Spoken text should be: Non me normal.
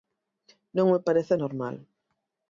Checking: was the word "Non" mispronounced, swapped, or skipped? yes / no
no